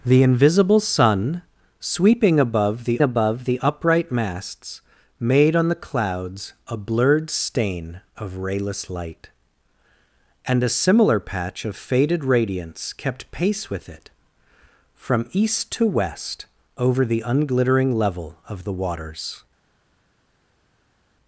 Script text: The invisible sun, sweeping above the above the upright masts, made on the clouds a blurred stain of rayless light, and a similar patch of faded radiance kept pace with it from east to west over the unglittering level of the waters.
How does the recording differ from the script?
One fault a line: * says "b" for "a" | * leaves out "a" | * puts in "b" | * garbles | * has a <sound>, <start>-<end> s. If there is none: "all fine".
all fine